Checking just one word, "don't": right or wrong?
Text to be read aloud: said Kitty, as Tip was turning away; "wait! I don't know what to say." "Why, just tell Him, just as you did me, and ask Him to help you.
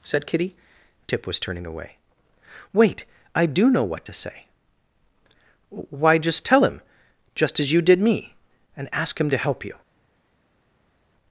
wrong